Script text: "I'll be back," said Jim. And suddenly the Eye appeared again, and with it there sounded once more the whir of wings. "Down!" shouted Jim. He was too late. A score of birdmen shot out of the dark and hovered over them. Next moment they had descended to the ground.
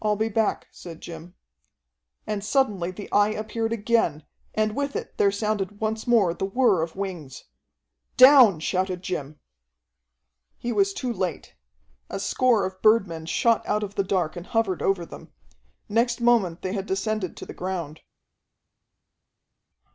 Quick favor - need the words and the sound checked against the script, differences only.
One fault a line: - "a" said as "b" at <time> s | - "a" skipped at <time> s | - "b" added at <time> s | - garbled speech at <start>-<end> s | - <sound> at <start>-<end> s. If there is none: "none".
none